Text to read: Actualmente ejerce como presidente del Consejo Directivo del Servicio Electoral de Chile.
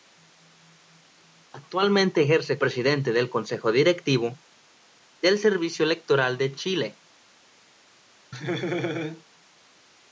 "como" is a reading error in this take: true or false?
true